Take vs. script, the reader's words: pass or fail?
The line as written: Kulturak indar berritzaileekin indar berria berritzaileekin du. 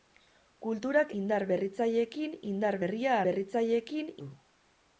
pass